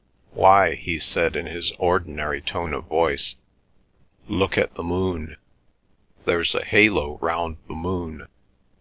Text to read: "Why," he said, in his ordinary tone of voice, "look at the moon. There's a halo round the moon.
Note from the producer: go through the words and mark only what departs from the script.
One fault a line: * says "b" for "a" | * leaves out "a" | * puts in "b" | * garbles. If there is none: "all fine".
all fine